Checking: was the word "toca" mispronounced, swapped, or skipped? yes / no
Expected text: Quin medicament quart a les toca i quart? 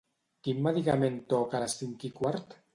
yes